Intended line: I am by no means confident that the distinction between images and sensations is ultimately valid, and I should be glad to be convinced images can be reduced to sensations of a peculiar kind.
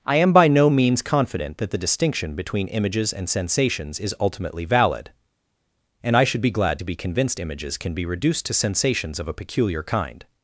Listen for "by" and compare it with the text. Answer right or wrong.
right